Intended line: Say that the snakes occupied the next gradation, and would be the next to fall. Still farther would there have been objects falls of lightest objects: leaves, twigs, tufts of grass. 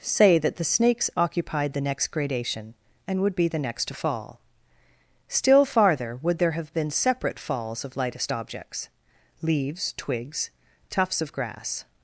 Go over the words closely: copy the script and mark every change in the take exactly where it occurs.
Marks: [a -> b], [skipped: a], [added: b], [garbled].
Say that the snakes occupied the next gradation, and would be the next to fall. Still farther would there have been [objects -> separate] falls of lightest objects: leaves, twigs, tufts of grass.